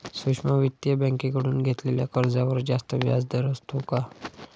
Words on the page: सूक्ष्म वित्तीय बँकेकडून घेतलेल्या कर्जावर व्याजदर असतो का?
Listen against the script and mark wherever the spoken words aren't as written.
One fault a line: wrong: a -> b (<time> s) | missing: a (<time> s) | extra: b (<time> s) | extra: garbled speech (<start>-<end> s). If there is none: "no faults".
extra: जास्त (2.6 s)